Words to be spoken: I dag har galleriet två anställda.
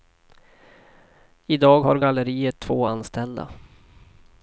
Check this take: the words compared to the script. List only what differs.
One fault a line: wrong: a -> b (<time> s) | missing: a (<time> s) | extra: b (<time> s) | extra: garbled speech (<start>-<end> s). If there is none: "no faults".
no faults